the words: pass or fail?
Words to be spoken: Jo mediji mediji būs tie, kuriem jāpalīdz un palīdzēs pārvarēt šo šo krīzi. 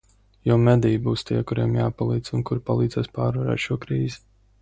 fail